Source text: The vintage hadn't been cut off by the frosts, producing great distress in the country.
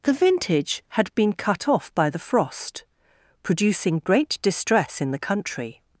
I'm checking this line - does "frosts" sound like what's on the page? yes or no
no